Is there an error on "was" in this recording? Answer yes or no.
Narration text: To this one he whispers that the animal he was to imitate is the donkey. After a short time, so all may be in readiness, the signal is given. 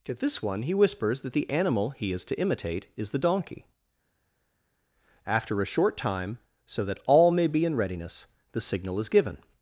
yes